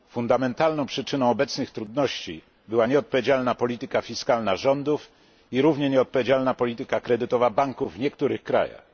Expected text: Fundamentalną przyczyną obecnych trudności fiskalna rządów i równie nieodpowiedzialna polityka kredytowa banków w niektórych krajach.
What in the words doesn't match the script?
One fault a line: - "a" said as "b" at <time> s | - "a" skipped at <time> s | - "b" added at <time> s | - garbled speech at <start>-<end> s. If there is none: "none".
- "była nieodpowiedzialna polityka" added at 2.7 s